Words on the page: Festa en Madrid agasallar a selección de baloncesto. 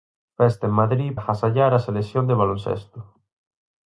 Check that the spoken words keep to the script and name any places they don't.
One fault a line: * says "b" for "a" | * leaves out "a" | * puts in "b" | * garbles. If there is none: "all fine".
all fine